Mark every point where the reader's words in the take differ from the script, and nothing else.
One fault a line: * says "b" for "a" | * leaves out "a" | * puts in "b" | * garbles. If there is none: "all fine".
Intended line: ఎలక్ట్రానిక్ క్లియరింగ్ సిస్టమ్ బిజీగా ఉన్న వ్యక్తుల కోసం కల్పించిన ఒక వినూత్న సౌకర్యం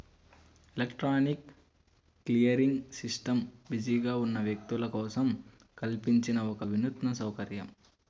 all fine